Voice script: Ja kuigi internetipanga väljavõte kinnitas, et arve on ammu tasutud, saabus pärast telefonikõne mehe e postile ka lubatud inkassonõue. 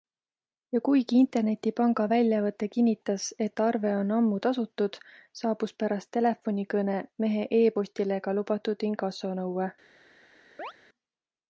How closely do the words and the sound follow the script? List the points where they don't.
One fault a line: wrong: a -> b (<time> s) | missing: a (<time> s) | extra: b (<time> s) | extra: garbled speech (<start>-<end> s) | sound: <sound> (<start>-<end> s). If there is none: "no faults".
sound: chirp (10.6-10.7 s)